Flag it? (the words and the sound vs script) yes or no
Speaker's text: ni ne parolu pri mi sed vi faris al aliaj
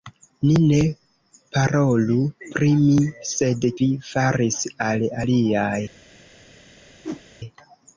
yes